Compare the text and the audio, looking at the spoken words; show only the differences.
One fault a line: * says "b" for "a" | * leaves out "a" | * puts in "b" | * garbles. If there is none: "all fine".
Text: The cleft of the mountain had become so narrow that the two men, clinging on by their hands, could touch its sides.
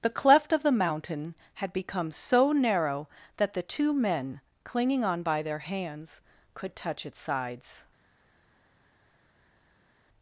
all fine